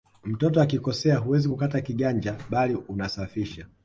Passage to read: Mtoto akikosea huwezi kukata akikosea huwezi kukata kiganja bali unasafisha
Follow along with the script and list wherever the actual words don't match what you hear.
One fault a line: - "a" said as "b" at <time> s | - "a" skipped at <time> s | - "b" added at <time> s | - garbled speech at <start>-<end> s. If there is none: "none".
- "akikosea huwezi kukata" skipped at 1.8 s